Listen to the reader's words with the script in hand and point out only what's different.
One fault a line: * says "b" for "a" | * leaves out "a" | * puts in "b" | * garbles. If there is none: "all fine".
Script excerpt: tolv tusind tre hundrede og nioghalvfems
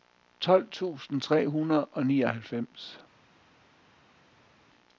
all fine